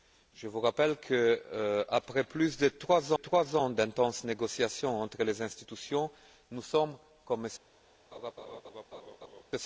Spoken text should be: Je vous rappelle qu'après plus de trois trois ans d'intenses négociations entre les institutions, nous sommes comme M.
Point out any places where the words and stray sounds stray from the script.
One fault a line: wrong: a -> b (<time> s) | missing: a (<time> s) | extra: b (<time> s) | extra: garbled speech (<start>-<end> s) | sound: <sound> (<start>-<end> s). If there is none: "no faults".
sound: laugh (8.1-9.4 s)